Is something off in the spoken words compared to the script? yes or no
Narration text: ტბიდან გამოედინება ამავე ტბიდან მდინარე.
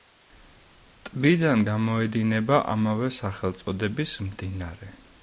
yes